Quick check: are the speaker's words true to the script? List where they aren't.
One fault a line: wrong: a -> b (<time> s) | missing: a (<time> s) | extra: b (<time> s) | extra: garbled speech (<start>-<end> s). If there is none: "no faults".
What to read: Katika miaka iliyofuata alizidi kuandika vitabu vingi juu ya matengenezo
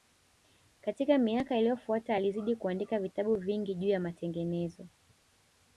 no faults